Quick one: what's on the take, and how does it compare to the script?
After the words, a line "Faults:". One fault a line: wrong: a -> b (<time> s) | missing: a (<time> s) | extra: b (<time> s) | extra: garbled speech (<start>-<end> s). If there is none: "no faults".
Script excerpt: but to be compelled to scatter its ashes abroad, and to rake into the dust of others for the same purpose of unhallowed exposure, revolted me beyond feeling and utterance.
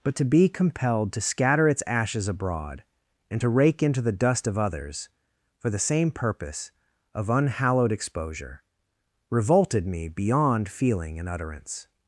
but to be compelled to scatter its ashes abroad, and to rake into the dust of others for the same purpose of unhallowed exposure, revolted me beyond feeling and utterance.
Faults:
no faults